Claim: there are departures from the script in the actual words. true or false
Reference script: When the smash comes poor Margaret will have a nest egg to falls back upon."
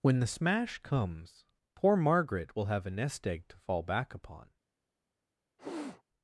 true